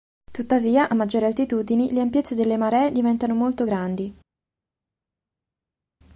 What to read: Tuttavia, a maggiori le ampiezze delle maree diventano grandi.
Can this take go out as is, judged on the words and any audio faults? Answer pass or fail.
fail